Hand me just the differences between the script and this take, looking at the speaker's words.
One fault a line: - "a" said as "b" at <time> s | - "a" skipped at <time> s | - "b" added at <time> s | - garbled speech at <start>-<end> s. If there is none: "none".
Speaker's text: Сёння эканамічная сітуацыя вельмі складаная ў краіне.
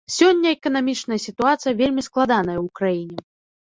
none